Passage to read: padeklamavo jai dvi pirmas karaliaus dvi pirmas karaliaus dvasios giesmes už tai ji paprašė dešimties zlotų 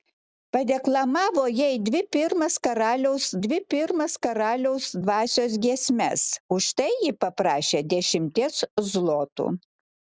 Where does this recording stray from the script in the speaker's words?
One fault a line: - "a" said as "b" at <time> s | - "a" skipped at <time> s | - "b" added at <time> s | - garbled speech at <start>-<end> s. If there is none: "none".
none